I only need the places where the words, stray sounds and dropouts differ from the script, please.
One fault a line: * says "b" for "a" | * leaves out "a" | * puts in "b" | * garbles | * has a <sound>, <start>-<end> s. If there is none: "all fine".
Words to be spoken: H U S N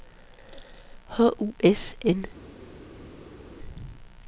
all fine